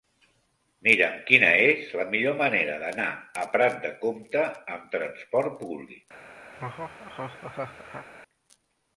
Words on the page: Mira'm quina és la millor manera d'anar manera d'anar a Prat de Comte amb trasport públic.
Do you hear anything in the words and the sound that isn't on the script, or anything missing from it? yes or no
yes